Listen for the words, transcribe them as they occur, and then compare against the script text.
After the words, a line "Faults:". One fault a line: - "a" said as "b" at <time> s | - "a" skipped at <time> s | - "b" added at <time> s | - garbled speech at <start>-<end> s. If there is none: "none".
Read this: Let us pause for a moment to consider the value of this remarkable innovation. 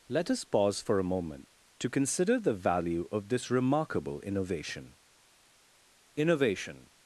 Let us pause for a moment to consider the value of this remarkable innovation innovation.
Faults:
- "innovation" added at 6.2 s